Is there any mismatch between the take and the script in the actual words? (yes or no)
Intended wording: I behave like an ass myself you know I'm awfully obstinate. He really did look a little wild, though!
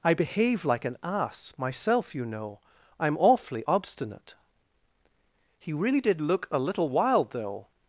no